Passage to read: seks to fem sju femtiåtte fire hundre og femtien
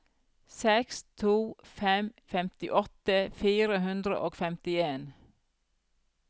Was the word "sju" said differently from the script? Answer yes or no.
yes